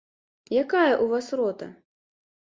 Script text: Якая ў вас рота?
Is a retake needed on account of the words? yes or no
no